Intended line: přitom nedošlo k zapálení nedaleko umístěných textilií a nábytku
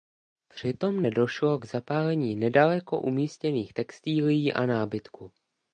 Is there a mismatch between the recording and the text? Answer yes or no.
no